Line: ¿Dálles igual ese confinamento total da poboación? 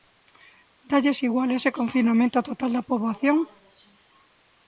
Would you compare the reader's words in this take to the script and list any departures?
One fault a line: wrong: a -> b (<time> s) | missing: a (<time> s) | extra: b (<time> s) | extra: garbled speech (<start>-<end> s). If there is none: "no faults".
no faults